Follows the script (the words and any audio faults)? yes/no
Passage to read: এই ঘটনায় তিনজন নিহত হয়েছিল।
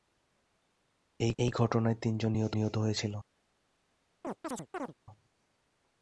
no